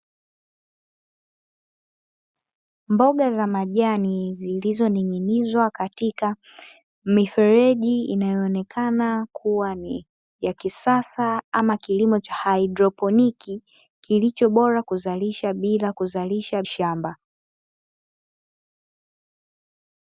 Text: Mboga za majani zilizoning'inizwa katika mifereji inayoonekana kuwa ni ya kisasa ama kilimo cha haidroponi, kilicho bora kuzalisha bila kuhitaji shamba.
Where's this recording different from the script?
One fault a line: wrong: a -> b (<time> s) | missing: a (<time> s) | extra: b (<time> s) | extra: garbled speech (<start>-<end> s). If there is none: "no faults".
wrong: kuhitaji -> kuzalisha (15.9 s)